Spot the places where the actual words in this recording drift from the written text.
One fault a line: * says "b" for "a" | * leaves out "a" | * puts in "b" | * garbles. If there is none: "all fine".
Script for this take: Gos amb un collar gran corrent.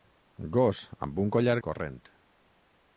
* leaves out "gran"